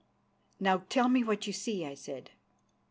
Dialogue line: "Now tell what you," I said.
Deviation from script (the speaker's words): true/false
true